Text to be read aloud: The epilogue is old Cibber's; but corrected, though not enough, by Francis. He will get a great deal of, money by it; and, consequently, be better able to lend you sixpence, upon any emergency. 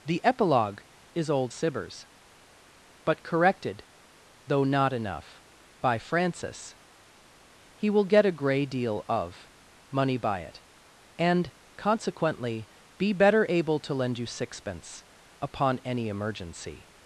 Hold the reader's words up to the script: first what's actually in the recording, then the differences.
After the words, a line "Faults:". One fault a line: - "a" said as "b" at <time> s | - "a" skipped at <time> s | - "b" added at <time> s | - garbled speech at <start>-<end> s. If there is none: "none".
The epilogue is old Cibber's; but corrected, though not enough, by Francis. He will get a grey deal of, money by it; and, consequently, be better able to lend you sixpence, upon any emergency.
Faults:
- "great" said as "grey" at 8.3 s